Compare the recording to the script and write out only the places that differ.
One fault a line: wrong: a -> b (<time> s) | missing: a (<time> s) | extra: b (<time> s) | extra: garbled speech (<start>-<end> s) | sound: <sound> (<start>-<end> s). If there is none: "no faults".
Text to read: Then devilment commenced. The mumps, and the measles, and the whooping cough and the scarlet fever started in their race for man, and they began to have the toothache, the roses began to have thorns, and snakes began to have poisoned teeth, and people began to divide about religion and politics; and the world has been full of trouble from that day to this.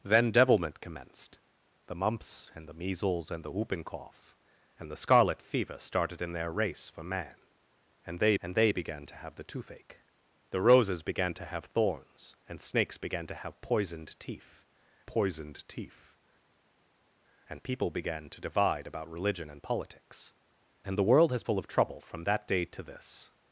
extra: and they (8.4 s)
extra: poisoned teeth (15.1 s)
missing: been (21.4 s)